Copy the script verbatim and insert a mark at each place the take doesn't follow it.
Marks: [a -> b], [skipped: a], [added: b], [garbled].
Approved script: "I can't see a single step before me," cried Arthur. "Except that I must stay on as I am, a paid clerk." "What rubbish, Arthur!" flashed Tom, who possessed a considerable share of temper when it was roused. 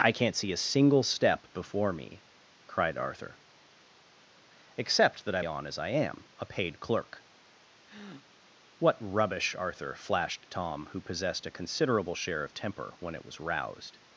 "I can't see a single step before me," cried Arthur. "Except that I [skipped: must stay] on as I am, a paid clerk." "What rubbish, Arthur!" flashed Tom, who possessed a considerable share of temper when it was roused.